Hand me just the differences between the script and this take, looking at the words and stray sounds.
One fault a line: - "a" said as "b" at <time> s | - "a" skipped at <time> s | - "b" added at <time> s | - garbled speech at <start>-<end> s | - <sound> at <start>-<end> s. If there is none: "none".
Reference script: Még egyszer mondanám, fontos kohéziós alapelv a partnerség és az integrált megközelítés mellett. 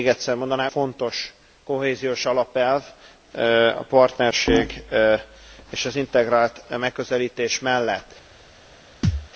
- thud at 9.0-9.3 s